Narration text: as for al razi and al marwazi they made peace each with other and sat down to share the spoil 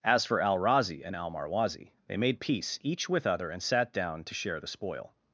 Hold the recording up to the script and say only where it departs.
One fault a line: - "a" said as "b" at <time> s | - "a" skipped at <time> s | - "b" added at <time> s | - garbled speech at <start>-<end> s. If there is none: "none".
none